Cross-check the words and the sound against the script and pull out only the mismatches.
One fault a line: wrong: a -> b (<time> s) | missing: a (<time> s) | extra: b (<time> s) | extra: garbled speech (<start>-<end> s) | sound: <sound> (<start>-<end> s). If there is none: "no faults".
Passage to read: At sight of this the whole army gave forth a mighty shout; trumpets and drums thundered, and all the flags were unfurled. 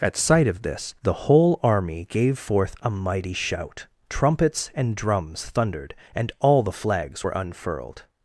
no faults